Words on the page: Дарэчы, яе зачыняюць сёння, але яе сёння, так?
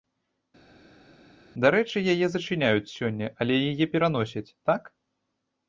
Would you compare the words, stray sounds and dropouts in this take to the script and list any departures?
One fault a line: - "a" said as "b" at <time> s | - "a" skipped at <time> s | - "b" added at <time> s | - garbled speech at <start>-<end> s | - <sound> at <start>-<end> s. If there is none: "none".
- "сёння" said as "пераносяць" at 3.9 s